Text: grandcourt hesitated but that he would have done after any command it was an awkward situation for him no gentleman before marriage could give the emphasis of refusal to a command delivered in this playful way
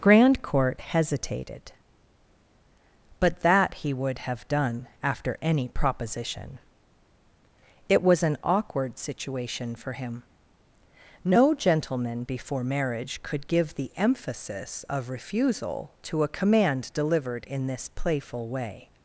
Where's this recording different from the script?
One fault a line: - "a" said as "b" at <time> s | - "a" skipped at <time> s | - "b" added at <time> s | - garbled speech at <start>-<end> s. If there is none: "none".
- "command" said as "proposition" at 5.7 s